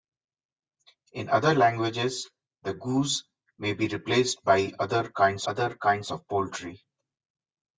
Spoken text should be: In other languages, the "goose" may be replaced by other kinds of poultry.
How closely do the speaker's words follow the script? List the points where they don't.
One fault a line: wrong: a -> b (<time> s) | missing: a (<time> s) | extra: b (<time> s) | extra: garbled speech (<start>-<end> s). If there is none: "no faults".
extra: other kinds (5.5 s)